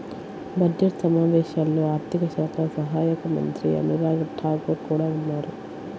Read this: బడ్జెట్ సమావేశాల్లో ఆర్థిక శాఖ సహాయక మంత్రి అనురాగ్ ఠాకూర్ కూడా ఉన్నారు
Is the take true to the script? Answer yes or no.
yes